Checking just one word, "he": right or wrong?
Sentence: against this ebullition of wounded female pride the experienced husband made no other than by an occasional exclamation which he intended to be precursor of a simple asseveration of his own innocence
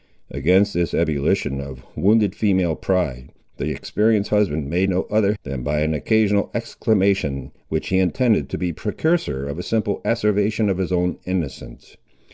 right